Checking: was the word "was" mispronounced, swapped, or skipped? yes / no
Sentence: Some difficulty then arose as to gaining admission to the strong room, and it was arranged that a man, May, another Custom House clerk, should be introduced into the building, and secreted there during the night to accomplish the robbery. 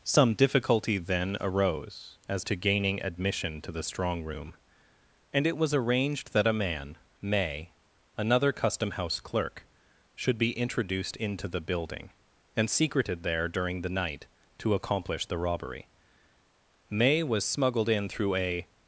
no